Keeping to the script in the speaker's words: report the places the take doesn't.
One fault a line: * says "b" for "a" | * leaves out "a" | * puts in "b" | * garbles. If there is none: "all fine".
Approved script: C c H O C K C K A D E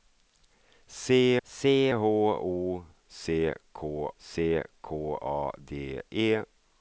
all fine